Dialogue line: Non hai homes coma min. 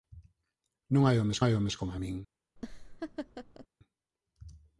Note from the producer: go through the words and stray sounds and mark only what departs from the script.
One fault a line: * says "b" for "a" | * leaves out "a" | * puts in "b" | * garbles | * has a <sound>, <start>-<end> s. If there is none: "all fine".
* puts in "hai homes"
* has a laugh, 2.6-3.7 s